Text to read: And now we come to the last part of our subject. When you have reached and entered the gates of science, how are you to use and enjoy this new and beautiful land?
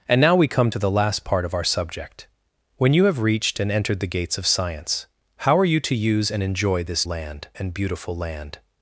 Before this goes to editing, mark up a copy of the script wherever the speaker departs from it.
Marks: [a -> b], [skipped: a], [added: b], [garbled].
And now we come to the last part of our subject. When you have reached and entered the gates of science, how are you to use and enjoy this [new -> land] and beautiful land?